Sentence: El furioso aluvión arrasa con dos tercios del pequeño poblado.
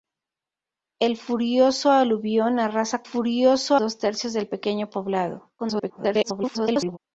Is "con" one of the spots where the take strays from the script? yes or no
yes